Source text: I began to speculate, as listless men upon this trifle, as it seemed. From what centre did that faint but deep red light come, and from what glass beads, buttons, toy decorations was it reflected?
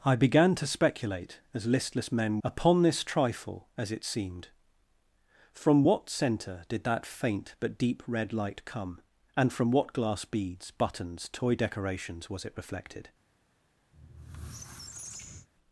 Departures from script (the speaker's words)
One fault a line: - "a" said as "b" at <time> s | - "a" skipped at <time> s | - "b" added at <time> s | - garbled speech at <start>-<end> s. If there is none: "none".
none